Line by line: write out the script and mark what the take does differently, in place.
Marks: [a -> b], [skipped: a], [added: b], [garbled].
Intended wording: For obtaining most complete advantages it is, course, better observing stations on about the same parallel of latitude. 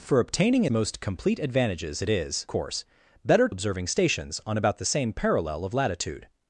For obtaining most complete advantages it is, course, better observing stations on about the same parallel of latitude.